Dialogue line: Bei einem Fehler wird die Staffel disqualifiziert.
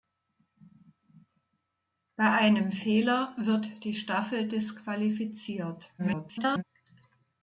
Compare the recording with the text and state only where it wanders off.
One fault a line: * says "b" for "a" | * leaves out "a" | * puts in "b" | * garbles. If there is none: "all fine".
* garbles